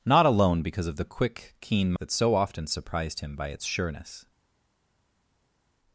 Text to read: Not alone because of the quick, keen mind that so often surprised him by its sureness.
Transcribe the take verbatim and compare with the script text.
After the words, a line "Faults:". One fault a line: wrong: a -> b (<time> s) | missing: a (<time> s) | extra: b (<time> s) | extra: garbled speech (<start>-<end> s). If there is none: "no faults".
Not alone because of the quick, keen that so often surprised him by its sureness.
Faults:
missing: mind (1.9 s)